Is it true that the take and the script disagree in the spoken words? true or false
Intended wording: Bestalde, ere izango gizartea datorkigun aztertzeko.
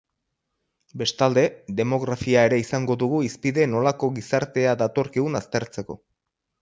true